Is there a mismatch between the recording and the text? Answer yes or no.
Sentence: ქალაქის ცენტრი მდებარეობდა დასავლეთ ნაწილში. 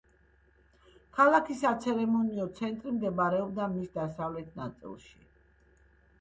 yes